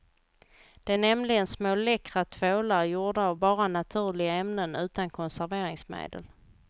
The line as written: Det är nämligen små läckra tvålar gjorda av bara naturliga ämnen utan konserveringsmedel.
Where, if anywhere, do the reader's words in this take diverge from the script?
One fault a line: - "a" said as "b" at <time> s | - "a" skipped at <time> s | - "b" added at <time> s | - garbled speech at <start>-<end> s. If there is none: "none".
none